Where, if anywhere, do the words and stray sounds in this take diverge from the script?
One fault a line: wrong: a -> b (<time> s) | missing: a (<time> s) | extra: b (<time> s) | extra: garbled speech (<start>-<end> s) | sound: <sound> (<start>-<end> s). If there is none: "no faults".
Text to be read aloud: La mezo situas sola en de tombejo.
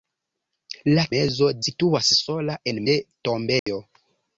sound: dropout (3.6-3.7 s)